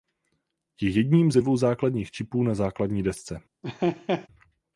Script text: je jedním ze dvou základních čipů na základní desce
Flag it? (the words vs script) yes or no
no